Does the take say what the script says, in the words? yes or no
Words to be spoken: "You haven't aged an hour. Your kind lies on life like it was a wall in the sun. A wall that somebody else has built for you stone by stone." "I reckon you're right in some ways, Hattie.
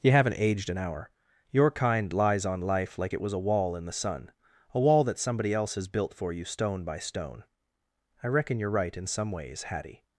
yes